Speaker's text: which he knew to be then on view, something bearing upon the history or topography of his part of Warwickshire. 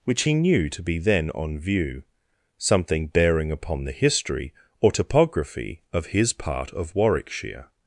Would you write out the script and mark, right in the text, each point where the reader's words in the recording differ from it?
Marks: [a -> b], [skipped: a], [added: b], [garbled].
which he knew to be then on view, something bearing upon the history or topography of his part of Warwickshire.